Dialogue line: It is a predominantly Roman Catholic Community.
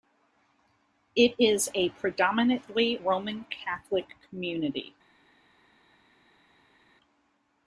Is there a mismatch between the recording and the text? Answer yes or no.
no